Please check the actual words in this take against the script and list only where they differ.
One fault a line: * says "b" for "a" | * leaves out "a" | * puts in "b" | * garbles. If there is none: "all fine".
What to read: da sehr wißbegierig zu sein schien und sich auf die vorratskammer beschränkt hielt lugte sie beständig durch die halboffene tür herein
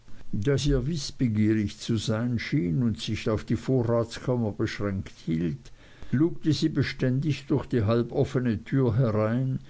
all fine